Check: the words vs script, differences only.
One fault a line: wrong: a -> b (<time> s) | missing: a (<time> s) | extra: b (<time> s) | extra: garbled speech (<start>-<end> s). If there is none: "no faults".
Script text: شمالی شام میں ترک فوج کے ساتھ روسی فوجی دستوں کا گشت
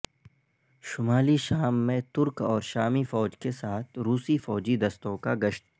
extra: اور شامی (2.4 s)